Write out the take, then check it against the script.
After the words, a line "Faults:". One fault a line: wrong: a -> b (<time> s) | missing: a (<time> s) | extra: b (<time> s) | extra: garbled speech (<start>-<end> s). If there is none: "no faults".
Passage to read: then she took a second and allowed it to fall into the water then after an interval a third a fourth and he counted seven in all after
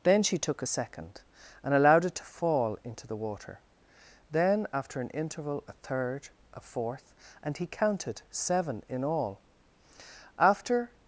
then she took a second and allowed it to fall into the water then after an interval a third a fourth and he counted seven in all after
Faults:
no faults